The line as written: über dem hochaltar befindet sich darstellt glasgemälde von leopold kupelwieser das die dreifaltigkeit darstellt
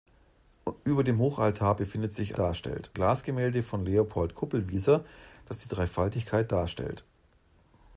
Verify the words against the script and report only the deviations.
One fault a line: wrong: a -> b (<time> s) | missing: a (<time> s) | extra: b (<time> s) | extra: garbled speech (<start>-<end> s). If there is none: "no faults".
no faults